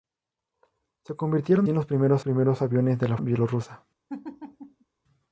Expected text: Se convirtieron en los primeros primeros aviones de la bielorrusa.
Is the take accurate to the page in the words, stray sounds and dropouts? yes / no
no